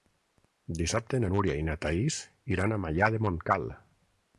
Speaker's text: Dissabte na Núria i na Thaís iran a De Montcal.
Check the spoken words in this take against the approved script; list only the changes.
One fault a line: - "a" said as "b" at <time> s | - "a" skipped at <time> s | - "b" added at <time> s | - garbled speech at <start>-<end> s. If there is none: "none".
- "Maià" added at 2.9 s